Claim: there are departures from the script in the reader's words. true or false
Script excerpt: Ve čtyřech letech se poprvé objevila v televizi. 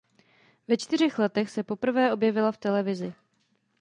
false